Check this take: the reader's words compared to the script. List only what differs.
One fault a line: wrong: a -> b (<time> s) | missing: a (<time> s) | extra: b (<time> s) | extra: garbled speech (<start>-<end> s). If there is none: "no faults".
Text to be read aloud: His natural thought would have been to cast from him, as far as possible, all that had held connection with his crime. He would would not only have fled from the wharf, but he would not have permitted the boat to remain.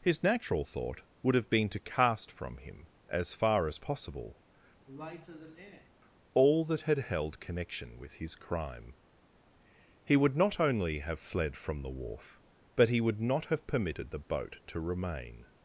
missing: would (10.4 s)